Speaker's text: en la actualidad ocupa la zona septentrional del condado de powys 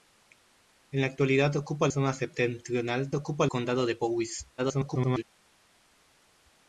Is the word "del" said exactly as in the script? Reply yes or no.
no